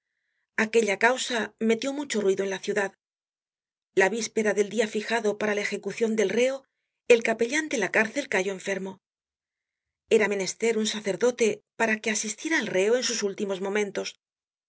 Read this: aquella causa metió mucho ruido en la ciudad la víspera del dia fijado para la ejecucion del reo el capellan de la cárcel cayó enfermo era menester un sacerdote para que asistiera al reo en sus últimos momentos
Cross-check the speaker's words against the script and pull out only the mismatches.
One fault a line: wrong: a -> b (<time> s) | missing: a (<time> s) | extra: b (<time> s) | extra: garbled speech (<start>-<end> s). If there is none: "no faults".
no faults